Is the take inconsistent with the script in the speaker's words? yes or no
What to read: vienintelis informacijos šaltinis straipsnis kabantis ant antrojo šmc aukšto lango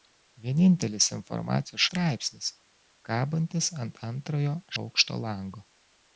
yes